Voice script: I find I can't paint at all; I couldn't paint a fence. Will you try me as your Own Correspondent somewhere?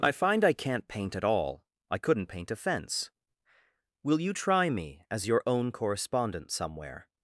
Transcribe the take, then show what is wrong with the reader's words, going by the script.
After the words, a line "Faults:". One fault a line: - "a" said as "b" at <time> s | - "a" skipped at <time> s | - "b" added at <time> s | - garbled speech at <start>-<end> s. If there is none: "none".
I find I can't paint at all; I couldn't paint a fence. Will you try me as your Own Correspondent somewhere?
Faults:
none